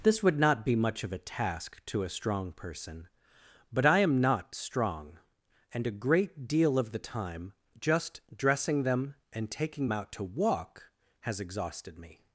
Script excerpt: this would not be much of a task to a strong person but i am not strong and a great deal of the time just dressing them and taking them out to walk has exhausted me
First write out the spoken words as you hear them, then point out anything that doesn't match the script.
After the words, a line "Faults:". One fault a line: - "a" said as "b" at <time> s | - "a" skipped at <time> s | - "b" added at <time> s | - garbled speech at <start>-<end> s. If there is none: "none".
this would not be much of a task to a strong person but i am not strong and a great deal of the time just dressing them and taking out to walk has exhausted me
Faults:
- "them" skipped at 9.9 s